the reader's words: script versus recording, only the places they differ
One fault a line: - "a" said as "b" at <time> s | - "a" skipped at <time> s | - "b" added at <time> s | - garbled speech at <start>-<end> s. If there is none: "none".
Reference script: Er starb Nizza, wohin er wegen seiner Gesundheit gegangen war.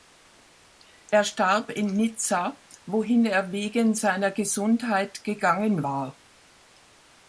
- "in" added at 1.7 s